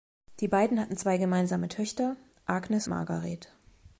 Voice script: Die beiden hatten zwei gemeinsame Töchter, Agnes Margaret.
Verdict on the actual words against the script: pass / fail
pass